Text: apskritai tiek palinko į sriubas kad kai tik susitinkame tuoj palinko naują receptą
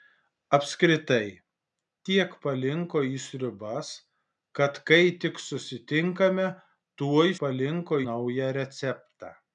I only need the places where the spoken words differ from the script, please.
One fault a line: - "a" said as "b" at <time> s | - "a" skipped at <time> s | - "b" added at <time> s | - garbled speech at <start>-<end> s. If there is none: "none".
none